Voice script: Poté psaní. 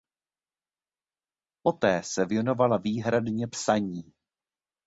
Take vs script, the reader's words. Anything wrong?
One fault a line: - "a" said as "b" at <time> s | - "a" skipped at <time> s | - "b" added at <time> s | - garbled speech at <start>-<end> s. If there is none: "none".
- "se věnovala výhradně" added at 2.0 s